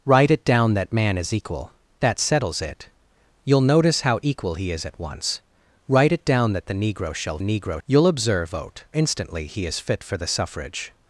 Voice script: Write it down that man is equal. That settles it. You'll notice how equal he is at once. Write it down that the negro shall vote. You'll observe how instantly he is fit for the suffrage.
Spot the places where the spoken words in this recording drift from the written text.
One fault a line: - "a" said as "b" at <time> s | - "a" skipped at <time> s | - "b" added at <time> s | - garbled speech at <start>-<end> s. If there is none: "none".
- "vote" said as "negro" at 7.4 s
- "how" said as "vote" at 8.4 s